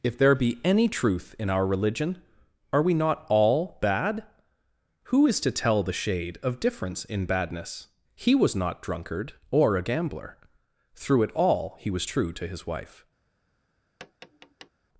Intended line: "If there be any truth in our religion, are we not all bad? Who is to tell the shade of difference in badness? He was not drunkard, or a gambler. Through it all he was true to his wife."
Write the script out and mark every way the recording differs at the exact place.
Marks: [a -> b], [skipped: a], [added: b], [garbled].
"If there be any truth in our religion, are we not all bad? Who is to tell the shade of difference in badness? He was not drunkard, or a gambler. Through it all he was true to his wife."